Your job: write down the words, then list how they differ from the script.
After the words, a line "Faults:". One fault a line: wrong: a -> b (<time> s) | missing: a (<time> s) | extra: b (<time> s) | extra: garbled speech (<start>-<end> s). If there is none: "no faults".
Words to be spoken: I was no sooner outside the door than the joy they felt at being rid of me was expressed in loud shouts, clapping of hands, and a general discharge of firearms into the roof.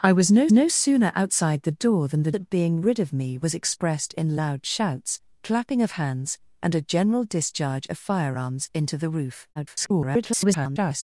I was no no sooner outside the door than the at being rid of me was expressed in loud shouts, clapping of hands, and a general discharge of firearms into the roof. [garbled]
Faults:
extra: no (0.5 s)
missing: joy they felt (2.3 s)
extra: garbled speech (9.6-11.0 s)